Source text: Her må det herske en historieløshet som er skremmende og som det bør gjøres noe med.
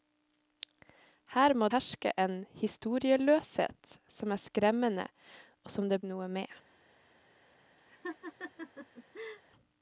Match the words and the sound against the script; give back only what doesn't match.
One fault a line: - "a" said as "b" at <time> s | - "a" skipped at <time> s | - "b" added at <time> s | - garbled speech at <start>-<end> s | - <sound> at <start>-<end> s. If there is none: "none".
- "det" skipped at 1.7 s
- "bør gjøres" skipped at 6.0 s
- laugh at 7.9-9.4 s